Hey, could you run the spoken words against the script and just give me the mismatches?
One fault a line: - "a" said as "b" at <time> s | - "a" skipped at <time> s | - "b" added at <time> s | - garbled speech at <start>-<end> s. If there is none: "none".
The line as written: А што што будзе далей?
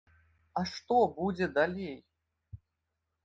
- "што" skipped at 0.9 s